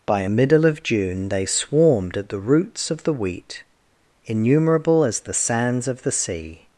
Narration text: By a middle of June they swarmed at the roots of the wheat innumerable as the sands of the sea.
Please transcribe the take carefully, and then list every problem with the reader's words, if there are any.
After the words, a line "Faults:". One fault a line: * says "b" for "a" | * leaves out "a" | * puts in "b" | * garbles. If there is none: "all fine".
By a middle of June they swarmed at the roots of the wheat innumerable as the sands of the sea.
Faults:
all fine